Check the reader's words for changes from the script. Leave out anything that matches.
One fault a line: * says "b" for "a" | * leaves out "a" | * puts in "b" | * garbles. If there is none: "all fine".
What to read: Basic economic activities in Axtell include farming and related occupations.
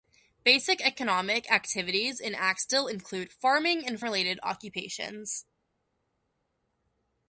all fine